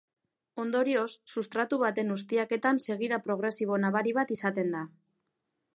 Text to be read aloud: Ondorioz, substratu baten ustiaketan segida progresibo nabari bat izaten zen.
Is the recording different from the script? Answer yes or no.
yes